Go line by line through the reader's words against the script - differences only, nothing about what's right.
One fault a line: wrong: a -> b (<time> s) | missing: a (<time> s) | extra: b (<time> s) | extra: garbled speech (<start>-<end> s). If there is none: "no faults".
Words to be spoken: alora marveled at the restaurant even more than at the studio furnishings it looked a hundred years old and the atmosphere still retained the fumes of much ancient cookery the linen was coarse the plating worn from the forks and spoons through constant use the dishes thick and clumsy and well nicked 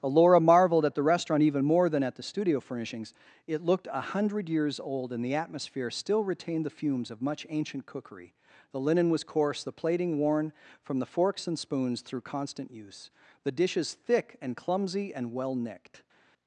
no faults